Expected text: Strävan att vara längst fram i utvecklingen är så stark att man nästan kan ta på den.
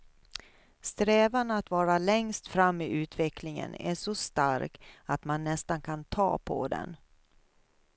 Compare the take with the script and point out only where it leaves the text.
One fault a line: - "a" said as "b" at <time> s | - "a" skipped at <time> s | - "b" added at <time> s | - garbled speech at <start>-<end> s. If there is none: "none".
none